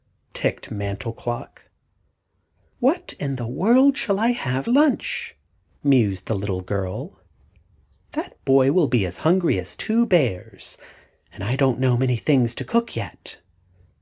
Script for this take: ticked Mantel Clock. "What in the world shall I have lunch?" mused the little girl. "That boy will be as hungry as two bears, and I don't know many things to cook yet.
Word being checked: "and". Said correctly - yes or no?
yes